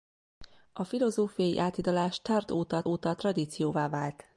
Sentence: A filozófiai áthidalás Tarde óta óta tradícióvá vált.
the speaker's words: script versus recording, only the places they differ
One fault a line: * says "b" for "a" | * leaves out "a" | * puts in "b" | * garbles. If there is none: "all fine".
all fine